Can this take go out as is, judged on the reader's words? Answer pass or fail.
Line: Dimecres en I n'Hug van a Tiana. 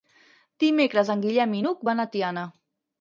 fail